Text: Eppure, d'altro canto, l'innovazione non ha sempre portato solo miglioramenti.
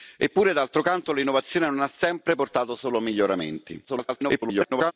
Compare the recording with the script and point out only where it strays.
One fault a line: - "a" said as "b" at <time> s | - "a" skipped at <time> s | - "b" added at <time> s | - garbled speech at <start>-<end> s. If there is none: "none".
- garbled speech at 3.9-4.9 s